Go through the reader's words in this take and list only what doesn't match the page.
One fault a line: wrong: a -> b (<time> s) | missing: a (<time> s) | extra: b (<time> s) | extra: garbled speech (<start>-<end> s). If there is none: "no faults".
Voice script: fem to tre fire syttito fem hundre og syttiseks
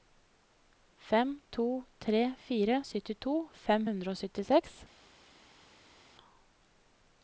no faults